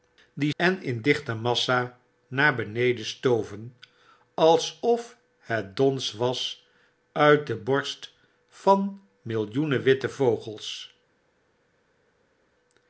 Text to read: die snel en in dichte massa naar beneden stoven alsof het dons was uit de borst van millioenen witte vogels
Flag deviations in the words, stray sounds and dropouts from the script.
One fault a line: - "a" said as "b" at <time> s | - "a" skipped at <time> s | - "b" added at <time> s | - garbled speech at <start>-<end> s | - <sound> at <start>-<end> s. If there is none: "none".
- "snel" skipped at 0.5 s